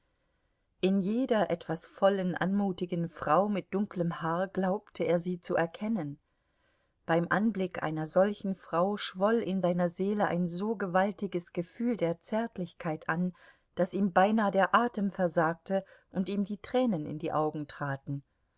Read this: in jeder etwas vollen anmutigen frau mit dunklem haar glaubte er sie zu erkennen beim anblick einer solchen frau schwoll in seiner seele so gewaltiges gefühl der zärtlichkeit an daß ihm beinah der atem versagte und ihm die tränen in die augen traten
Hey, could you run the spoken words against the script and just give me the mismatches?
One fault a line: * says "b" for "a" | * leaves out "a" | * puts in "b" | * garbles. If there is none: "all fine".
* puts in "ein"